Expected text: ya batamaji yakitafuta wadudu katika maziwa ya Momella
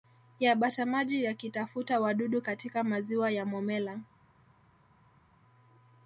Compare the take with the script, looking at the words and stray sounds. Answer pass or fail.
pass